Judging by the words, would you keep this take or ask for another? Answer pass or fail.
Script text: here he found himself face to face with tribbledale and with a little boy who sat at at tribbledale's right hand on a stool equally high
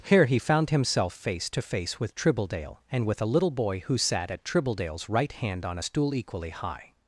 fail